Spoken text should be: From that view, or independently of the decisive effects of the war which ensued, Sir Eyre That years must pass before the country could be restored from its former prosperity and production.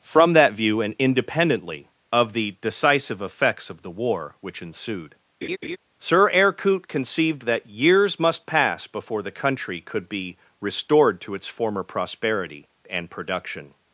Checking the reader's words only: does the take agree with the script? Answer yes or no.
no